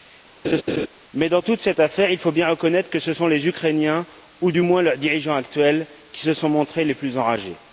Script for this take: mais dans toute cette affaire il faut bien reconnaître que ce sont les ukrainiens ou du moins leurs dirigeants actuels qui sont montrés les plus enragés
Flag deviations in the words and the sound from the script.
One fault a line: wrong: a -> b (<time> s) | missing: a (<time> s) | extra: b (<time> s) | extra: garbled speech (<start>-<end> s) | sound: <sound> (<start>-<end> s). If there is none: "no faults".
sound: laugh (0.4-0.9 s)
extra: se (6.2 s)